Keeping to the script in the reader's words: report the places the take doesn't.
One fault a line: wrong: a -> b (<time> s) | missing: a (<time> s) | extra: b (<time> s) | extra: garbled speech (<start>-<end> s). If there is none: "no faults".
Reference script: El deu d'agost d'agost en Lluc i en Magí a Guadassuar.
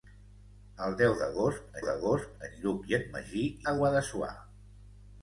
no faults